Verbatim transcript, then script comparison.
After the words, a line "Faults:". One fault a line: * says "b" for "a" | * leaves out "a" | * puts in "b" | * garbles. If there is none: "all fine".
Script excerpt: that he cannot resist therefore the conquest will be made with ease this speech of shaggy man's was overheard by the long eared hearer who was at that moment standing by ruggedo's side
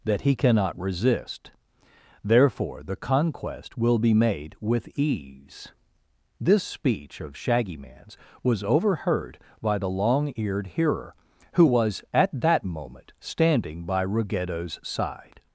that he cannot resist therefore the conquest will be made with ease this speech of shaggy man's was overheard by the long eared hearer who was at that moment standing by ruggedo's side
Faults:
all fine